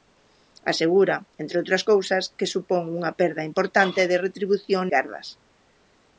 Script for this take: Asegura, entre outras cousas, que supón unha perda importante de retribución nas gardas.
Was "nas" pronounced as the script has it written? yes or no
no